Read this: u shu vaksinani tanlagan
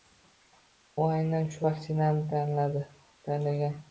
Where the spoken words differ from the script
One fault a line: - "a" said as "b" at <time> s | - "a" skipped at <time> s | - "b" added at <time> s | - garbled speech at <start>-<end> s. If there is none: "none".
- "aynan" added at 1.2 s